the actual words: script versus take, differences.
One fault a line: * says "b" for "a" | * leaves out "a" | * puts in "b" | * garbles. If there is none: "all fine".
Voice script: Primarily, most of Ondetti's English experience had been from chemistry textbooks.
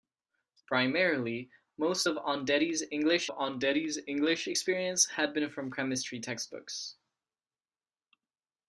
* puts in "Ondetti's English"